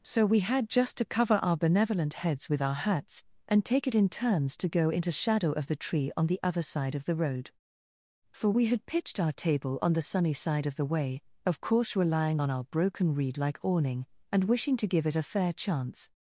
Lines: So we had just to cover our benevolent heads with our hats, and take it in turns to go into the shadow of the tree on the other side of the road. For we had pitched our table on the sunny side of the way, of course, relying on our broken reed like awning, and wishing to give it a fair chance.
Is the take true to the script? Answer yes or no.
no